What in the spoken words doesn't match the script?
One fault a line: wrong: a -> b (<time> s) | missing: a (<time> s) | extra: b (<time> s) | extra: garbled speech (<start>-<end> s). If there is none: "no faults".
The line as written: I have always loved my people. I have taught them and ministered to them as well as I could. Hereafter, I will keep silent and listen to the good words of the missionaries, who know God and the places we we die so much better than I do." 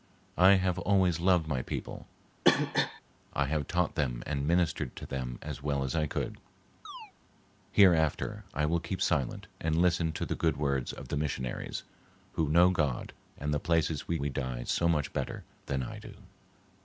no faults